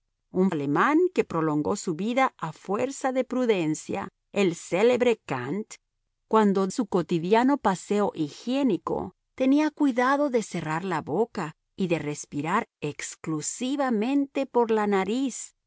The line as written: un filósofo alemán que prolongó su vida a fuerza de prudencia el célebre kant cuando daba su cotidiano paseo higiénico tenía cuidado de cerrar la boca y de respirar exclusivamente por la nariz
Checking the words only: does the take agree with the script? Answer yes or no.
no